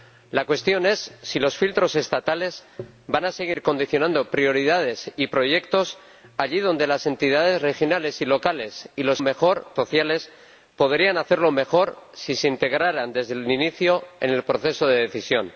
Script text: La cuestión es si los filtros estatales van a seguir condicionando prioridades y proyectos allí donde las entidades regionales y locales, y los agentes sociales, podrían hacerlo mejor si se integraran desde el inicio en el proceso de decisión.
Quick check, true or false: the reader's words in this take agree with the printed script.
false